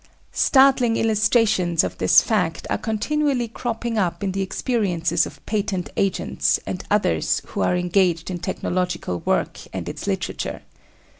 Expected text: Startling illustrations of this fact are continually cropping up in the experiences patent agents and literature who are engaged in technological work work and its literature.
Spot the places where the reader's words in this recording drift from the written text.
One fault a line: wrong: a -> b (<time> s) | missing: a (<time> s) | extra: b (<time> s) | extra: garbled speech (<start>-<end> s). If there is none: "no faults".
extra: of (5.3 s)
wrong: literature -> others (6.9 s)
missing: work (9.6 s)